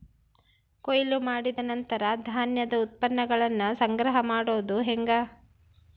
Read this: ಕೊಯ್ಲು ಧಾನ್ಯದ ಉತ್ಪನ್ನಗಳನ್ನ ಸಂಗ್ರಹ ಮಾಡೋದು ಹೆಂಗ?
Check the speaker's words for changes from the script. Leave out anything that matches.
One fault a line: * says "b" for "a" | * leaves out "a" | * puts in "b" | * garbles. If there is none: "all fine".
* puts in "ಮಾಡಿದ ನಂತರ"